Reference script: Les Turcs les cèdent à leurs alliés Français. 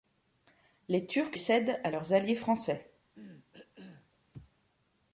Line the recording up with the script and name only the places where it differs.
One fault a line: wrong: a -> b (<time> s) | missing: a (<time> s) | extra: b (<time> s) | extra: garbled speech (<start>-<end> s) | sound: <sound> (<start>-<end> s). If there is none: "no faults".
missing: les (1.4 s)
sound: cough (3.1-4.1 s)